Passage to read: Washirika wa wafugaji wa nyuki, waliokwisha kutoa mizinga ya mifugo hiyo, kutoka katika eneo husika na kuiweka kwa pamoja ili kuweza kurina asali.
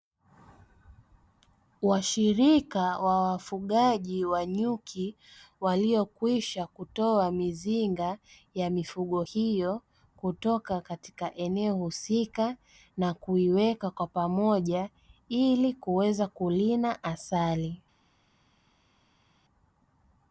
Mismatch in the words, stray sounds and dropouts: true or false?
false